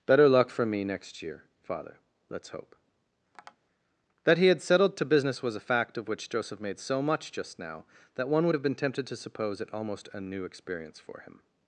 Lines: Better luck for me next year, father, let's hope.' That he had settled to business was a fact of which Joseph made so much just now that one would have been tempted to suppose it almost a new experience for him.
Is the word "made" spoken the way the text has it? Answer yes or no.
yes